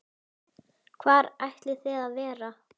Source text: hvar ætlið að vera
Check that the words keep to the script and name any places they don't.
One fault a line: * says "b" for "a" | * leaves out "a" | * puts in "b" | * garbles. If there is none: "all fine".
* puts in "þið"